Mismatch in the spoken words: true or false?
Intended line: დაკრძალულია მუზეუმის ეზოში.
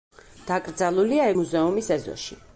false